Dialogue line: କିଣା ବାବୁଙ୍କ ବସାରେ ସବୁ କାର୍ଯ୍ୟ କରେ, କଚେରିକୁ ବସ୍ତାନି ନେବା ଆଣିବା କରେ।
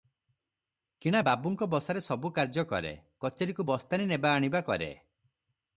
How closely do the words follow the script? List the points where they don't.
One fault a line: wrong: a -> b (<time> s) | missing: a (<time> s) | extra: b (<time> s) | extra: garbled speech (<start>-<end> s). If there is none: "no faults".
no faults